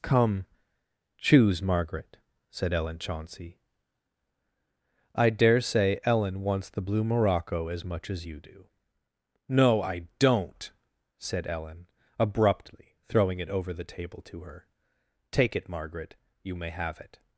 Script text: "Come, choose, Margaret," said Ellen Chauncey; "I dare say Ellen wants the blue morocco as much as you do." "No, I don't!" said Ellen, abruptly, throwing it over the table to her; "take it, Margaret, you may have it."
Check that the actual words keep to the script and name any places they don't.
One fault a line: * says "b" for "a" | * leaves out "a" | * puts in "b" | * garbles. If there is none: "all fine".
all fine